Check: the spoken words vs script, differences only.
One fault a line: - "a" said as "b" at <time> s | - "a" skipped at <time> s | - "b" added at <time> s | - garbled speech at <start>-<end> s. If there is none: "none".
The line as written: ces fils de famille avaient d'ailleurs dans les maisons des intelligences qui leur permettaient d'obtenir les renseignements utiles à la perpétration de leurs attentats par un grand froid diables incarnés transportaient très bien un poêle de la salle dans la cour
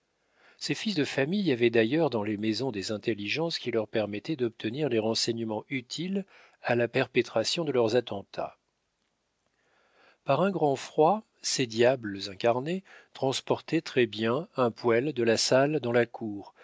- "ces" added at 11.4 s